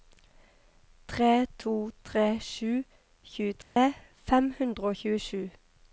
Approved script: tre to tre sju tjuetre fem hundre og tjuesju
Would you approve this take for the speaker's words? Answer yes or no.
yes